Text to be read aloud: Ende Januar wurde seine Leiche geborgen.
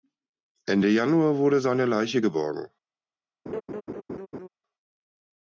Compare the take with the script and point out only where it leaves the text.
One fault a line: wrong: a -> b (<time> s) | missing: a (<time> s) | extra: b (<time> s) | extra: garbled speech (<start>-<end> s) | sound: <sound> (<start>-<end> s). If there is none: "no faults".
sound: laugh (3.5-4.5 s)